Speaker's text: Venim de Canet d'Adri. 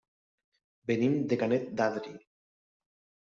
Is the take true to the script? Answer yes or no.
yes